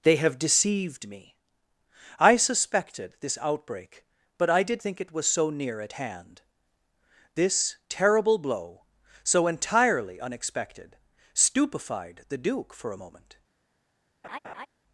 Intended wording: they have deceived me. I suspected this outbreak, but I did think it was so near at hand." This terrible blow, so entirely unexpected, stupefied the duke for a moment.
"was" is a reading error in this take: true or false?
false